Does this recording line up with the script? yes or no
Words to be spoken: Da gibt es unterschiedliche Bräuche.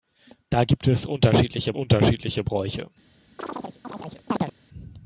no